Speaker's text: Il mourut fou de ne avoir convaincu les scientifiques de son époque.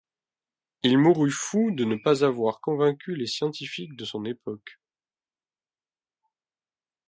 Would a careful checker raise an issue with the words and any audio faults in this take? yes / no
yes